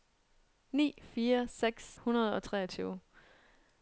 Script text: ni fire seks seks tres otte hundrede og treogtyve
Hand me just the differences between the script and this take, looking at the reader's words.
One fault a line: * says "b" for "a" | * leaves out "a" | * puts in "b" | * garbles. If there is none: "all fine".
* leaves out "seks tres otte"